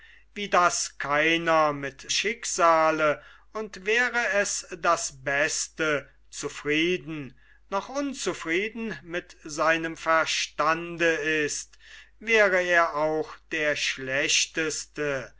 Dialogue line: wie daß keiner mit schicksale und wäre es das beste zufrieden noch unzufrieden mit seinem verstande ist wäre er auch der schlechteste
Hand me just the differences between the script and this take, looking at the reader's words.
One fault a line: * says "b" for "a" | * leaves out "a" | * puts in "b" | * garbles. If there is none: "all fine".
all fine